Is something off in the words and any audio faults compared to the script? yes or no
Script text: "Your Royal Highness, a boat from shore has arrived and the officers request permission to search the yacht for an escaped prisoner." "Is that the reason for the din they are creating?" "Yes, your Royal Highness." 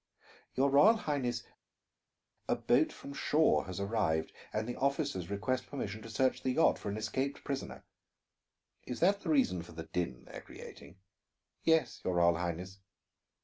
no